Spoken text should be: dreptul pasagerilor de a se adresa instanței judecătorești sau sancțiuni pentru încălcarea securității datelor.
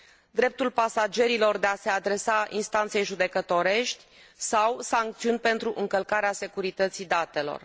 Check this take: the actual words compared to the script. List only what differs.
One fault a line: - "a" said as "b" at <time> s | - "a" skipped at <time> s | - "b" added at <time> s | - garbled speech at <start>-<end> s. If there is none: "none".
none